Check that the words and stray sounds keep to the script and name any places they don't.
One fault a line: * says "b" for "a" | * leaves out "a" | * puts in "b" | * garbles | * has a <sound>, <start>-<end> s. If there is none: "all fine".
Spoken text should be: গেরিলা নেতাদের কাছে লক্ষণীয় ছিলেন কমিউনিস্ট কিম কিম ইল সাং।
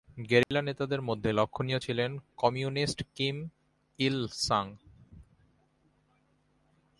* has a dropout, 0.4-0.5 s
* says "মধ্যে" for "কাছে"
* leaves out "কিম"